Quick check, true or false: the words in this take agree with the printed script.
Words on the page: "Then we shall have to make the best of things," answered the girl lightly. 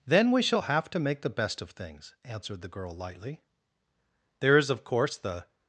false